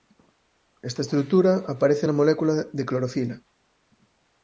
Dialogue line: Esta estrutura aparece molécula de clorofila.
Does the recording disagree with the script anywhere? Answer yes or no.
yes